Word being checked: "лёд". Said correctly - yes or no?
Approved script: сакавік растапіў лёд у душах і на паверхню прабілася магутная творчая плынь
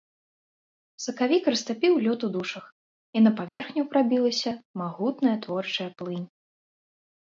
yes